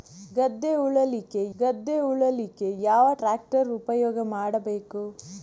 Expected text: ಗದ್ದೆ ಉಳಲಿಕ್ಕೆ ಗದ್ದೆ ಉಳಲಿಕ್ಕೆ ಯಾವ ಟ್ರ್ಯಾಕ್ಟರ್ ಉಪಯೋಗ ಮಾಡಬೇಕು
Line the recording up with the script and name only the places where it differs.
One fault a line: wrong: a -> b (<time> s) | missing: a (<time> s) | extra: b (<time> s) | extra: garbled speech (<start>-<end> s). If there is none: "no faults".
no faults